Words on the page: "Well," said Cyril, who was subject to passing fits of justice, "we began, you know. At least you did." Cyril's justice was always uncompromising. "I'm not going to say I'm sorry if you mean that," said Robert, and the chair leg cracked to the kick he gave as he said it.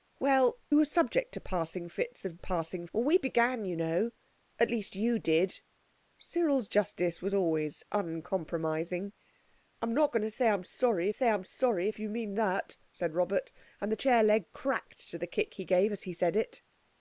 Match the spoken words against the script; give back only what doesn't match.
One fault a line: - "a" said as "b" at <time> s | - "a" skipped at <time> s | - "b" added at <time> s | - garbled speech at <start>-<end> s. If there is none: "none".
- "said Cyril who" skipped at 0.6 s
- "justice" said as "passing" at 2.4 s
- "say I'm sorry" added at 11.1 s